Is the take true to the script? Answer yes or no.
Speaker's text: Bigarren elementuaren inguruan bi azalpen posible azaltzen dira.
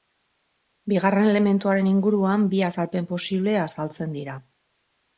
yes